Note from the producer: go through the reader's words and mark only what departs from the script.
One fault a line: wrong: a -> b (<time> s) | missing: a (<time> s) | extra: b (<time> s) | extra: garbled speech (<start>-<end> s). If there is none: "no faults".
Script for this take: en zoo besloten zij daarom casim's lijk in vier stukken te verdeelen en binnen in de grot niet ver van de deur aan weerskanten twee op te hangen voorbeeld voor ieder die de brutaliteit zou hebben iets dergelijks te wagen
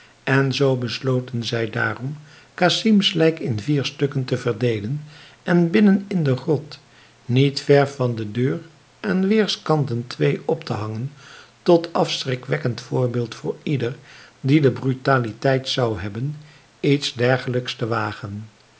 extra: tot afschrikwekkend (11.6 s)